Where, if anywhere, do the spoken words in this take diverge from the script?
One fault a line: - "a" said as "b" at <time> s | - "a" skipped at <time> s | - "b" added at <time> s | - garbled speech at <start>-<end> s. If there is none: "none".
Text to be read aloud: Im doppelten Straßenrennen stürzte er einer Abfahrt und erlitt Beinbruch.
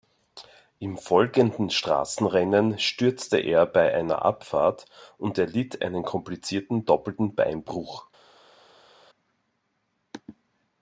- "doppelten" said as "folgenden" at 1.0 s
- "bei" added at 3.7 s
- "einen komplizierten doppelten" added at 5.8 s